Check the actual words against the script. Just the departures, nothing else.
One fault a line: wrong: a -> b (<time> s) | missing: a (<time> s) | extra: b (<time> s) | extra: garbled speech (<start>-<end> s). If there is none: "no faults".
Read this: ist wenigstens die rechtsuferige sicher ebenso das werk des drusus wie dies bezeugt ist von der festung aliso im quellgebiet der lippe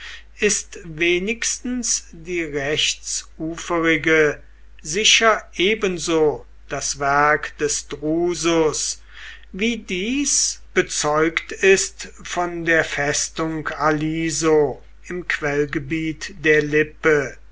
no faults